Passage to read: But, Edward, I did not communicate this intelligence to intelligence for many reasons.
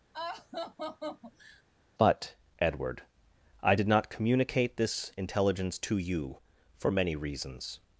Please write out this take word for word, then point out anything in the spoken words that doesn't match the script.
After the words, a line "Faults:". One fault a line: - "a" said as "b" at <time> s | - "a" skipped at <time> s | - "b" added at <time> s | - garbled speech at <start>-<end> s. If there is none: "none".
But, Edward, I did not communicate this intelligence to you for many reasons.
Faults:
- "intelligence" said as "you" at 6.0 s